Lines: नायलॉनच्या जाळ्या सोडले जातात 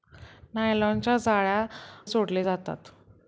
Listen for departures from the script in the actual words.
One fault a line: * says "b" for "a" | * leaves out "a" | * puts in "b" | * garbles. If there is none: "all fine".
all fine